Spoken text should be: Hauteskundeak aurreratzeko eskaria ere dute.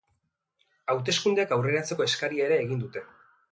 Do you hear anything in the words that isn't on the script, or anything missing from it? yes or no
yes